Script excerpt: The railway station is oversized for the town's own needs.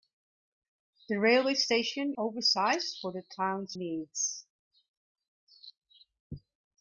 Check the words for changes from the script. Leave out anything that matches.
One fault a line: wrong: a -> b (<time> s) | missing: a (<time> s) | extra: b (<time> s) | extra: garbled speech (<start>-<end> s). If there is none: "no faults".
missing: is (2.1 s)
missing: own (3.8 s)